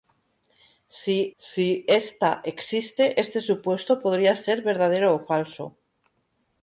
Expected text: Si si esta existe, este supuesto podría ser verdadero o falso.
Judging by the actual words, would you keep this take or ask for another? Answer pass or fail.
pass